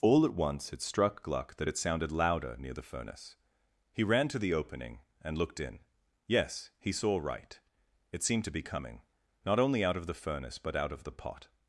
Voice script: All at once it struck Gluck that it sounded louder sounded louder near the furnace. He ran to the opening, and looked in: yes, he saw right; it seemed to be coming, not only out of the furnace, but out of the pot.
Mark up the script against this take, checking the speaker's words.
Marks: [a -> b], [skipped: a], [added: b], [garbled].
All at once it struck Gluck that it sounded louder [skipped: sounded louder] near the furnace. He ran to the opening, and looked in: yes, he saw right; it seemed to be coming, not only out of the furnace, but out of the pot.